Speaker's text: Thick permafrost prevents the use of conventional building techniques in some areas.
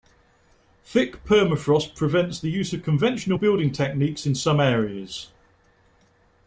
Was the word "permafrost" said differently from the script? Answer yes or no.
no